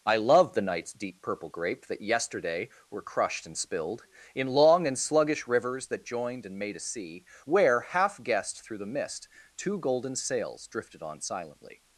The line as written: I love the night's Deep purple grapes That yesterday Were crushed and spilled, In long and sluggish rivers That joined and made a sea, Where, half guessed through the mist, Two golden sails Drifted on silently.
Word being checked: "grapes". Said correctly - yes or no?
no